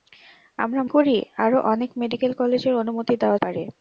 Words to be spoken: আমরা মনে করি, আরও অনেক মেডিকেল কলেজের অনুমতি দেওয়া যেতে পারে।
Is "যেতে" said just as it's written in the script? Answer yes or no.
no